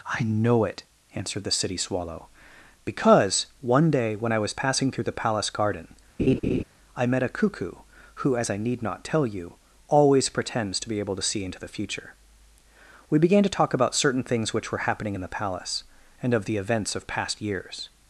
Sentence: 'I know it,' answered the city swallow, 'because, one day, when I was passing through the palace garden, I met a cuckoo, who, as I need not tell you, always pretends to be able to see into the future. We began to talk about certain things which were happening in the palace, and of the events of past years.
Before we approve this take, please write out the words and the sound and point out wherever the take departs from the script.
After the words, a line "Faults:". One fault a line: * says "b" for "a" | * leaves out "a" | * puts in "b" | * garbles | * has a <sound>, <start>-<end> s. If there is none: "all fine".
'I know it,' answered the city swallow, 'because, one day, when I was passing through the palace garden, I met a cuckoo, who, as I need not tell you, always pretends to be able to see into the future. We began to talk about certain things which were happening in the palace, and of the events of past years.
Faults:
* has a laugh, 6.2-6.6 s